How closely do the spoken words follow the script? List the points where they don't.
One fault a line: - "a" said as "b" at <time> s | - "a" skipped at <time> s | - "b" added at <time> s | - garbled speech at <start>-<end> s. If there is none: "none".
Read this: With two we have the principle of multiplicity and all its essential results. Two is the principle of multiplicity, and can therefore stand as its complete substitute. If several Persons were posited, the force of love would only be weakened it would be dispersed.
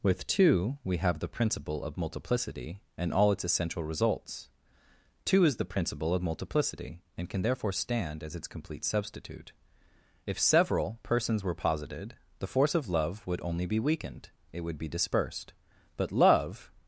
- "But love" added at 16.0 s